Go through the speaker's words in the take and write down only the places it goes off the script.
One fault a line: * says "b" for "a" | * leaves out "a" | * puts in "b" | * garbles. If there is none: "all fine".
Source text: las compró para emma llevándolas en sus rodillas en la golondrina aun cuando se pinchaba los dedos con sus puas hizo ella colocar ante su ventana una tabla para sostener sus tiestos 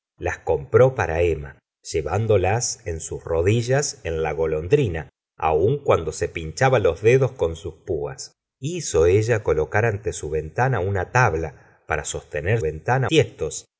* says "ventana" for "sus"